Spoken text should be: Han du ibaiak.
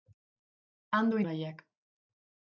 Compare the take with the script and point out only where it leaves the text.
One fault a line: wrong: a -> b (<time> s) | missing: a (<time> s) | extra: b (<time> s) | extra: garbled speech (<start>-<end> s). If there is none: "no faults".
no faults